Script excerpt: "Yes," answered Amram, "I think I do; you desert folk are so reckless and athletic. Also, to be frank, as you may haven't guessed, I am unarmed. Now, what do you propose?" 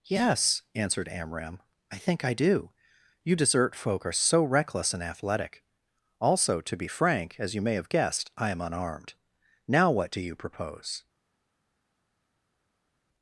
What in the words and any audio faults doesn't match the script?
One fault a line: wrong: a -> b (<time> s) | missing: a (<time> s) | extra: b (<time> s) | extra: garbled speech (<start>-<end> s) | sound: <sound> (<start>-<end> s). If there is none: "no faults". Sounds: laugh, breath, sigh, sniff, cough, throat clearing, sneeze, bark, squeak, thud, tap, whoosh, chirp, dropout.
wrong: haven't -> have (7.7 s)